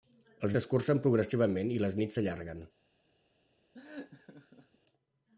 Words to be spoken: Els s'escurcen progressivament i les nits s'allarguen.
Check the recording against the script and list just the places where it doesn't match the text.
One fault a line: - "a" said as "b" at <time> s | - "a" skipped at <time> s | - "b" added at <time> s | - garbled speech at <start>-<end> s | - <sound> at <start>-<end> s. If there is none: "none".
- laugh at 3.7-4.8 s